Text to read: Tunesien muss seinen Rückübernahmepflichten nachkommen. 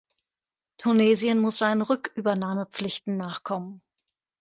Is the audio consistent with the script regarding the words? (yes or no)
yes